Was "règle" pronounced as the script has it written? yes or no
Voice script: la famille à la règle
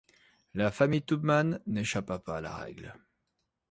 yes